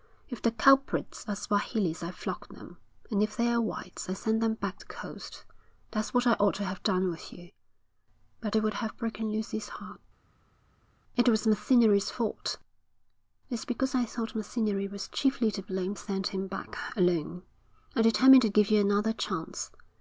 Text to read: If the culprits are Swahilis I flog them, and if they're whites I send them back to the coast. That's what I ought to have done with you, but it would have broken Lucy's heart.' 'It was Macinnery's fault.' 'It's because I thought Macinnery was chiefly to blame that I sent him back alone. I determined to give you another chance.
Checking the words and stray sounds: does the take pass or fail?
fail